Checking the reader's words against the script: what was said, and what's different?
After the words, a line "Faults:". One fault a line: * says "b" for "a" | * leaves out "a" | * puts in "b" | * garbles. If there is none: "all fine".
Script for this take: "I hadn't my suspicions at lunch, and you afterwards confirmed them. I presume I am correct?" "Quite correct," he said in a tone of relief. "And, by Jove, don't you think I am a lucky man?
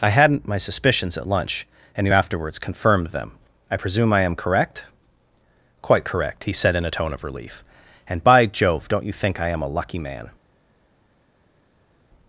"I hadn't my suspicions at lunch, and you afterwards confirmed them. I presume I am correct?" "Quite correct," he said in a tone of relief. "And, by Jove, don't you think I am a lucky man?
Faults:
all fine